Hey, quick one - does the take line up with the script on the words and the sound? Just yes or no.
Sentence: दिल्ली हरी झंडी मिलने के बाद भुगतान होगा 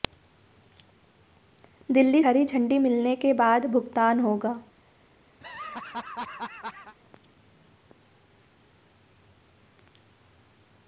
no